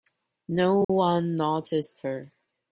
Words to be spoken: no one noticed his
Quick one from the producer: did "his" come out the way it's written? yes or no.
no